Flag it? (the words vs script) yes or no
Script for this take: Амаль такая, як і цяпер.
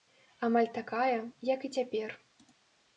no